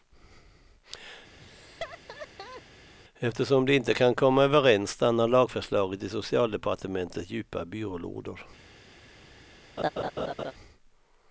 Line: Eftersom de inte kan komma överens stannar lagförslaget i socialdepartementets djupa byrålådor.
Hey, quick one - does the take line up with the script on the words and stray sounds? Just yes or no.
no